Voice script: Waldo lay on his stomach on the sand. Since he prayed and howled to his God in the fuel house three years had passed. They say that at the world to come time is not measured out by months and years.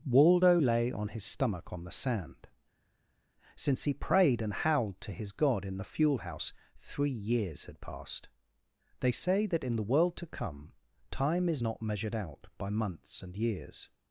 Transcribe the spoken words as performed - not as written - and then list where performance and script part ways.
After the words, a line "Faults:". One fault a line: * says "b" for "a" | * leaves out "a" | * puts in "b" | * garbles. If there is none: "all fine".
Waldo lay on his stomach on the sand. Since he prayed and howled to his God in the fuel house three years had passed. They say that in the world to come time is not measured out by months and years.
Faults:
* says "in" for "at"